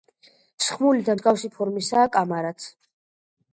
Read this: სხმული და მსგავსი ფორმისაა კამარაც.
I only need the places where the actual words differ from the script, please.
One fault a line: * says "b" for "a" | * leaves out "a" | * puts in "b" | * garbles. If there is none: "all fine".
all fine